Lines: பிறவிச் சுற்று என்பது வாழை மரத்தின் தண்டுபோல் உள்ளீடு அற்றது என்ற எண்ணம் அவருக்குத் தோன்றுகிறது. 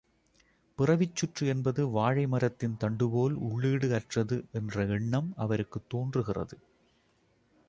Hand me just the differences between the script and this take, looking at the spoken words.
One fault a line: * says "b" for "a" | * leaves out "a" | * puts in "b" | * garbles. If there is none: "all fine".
all fine